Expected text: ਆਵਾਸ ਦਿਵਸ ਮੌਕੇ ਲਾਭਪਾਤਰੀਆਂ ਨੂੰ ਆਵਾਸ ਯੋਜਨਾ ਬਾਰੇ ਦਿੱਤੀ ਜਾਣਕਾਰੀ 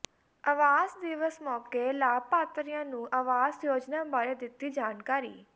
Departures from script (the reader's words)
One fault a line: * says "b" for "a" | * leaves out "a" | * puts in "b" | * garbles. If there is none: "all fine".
all fine